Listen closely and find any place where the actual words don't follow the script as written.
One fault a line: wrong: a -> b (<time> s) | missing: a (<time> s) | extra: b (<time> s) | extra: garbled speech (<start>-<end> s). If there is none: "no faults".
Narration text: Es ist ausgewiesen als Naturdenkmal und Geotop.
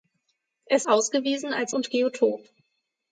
missing: ist (0.9 s)
missing: Naturdenkmal (1.7 s)